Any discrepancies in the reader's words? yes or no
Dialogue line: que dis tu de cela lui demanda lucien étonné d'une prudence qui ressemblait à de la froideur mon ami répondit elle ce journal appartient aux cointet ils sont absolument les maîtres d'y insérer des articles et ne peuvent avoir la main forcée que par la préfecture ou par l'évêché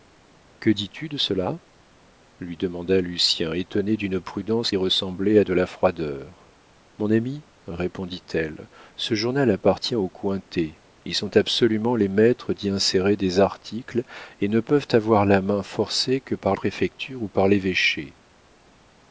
yes